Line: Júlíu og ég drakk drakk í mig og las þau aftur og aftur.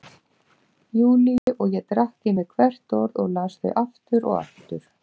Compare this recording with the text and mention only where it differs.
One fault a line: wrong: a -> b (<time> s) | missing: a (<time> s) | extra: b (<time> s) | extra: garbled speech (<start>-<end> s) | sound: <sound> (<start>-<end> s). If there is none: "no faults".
sound: dropout (1.4-1.5 s)
missing: drakk (2.3 s)
extra: hvert orð (2.6 s)